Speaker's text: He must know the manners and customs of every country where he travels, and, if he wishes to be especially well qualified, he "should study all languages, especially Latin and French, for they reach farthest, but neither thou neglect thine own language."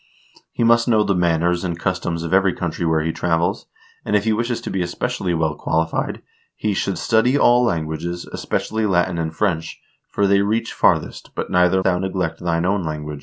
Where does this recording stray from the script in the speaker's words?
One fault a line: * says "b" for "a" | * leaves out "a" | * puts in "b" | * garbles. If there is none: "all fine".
all fine